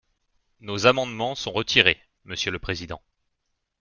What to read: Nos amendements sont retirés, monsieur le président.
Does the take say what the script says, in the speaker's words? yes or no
yes